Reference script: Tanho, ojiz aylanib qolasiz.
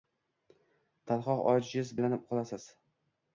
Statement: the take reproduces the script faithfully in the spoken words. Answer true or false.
true